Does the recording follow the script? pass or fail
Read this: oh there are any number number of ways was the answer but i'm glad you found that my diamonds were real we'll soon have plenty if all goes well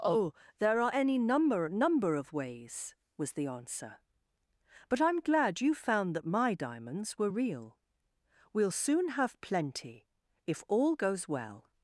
pass